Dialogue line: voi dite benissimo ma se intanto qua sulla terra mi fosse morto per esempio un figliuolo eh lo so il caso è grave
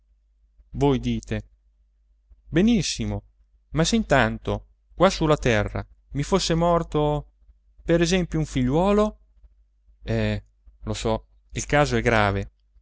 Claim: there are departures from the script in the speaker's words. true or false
false